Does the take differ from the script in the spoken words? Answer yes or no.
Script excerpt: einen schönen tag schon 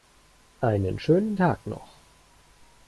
yes